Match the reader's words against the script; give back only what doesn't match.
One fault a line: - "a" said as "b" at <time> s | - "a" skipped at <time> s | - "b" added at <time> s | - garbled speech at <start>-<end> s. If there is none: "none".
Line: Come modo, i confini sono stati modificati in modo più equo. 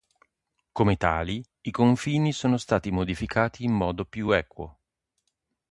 - "modo" said as "tali" at 1.0 s